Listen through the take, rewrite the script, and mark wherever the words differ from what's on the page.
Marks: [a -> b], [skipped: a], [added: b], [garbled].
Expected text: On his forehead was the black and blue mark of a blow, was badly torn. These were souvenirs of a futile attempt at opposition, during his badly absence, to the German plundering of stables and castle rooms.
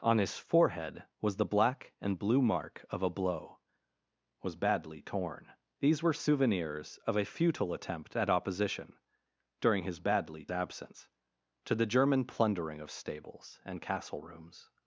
On his forehead was the black and blue mark of a blow, was badly torn. These were souvenirs of a futile attempt at opposition, during his badly absence, to the German plundering of stables and castle rooms.